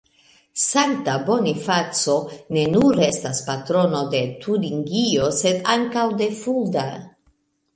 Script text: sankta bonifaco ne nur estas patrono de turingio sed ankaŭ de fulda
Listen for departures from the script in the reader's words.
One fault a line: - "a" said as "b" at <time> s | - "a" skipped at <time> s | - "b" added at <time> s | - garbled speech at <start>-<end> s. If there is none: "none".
none